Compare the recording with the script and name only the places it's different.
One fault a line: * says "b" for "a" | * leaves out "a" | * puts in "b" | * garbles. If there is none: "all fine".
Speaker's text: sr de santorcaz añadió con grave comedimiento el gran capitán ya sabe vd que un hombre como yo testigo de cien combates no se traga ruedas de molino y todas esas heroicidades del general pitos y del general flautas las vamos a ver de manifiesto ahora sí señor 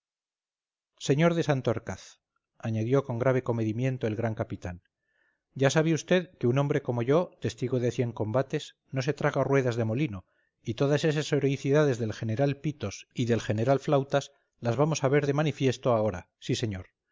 all fine